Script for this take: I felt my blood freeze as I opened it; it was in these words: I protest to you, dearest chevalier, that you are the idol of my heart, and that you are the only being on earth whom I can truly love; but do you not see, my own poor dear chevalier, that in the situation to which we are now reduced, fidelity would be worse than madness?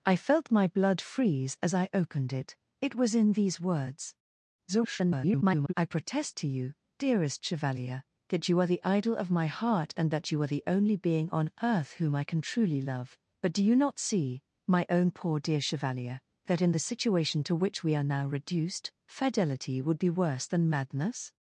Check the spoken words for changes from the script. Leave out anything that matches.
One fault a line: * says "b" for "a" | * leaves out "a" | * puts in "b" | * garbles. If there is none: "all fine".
* garbles